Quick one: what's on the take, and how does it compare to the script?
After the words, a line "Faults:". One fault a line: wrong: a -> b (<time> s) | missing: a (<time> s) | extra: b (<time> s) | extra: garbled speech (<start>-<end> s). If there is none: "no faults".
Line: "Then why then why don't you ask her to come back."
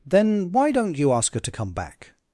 "Then why don't you ask her to come back."
Faults:
missing: then why (0.7 s)